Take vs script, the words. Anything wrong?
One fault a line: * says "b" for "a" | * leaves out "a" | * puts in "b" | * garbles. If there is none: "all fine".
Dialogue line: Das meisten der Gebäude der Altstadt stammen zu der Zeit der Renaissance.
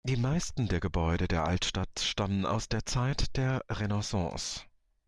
* says "Die" for "Das"
* says "aus" for "zu"